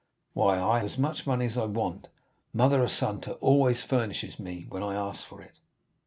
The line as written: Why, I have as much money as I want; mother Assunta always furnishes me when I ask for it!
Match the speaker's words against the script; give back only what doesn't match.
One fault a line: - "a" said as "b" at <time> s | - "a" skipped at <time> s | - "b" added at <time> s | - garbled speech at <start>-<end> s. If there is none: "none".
- "have" skipped at 0.8 s